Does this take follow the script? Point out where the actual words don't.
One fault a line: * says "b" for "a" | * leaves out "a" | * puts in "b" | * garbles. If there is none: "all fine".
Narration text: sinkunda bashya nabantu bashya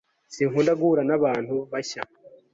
* says "guhura" for "bashya"